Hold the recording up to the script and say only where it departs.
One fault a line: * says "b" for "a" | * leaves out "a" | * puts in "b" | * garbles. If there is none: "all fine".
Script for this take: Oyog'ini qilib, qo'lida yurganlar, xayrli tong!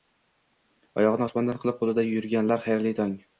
* puts in "osmondan"